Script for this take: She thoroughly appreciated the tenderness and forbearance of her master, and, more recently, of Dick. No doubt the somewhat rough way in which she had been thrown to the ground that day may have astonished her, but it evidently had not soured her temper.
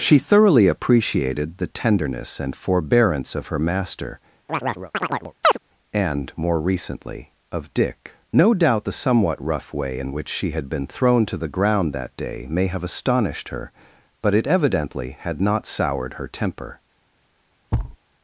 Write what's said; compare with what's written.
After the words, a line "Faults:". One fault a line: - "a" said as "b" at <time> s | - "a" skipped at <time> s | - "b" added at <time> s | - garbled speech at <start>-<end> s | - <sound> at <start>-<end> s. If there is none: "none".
She thoroughly appreciated the tenderness and forbearance of her master, and, more recently, of Dick. No doubt the somewhat rough way in which she had been thrown to the ground that day may have astonished her, but it evidently had not soured her temper.
Faults:
- chirp at 4.5-5.6 s
- thud at 17.7-18.0 s